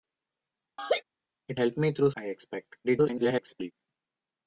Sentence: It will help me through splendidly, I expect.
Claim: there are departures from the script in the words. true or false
true